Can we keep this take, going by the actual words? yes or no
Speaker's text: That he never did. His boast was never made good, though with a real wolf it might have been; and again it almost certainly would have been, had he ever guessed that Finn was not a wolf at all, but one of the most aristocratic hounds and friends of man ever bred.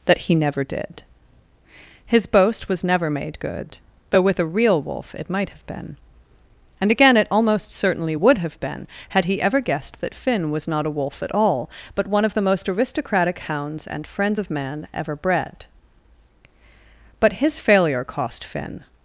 no